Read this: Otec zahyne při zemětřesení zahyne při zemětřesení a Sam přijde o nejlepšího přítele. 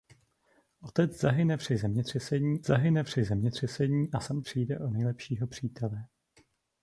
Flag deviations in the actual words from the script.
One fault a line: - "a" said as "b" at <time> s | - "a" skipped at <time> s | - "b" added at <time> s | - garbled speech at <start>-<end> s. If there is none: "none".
none